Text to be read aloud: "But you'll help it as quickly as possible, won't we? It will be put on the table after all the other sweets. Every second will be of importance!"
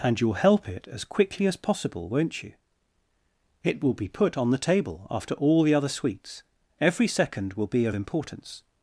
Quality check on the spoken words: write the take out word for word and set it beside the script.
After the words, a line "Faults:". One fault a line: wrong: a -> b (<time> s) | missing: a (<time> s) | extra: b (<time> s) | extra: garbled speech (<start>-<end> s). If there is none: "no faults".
"And you'll help it as quickly as possible, won't you? It will be put on the table after all the other sweets. Every second will be of importance!"
Faults:
wrong: But -> And (0.0 s)
wrong: we -> you (2.4 s)